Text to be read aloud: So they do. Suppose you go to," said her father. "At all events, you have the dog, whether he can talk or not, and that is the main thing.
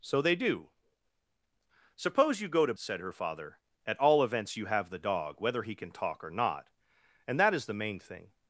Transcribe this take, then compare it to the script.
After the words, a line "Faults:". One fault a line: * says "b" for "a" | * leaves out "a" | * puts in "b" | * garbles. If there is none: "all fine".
So they do. Suppose you go to," said her father. "At all events, you have the dog, whether he can talk or not, and that is the main thing.
Faults:
all fine